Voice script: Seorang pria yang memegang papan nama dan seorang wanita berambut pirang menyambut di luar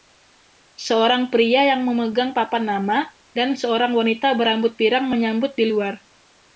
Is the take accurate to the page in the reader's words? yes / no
yes